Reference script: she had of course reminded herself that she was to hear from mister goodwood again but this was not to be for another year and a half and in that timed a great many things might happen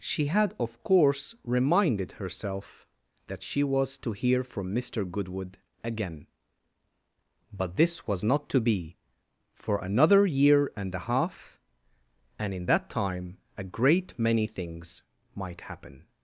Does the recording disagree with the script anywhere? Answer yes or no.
yes